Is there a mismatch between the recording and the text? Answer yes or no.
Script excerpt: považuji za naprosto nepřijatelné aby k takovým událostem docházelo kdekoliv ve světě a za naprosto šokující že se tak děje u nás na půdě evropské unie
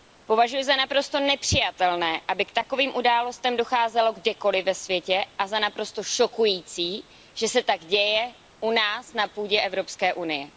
no